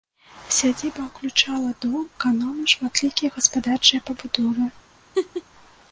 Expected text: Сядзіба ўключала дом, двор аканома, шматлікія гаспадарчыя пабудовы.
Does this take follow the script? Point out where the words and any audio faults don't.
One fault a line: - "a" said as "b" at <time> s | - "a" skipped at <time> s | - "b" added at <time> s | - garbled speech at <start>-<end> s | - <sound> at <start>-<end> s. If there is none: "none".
- "двор" skipped at 2.0 s
- laugh at 5.1-5.4 s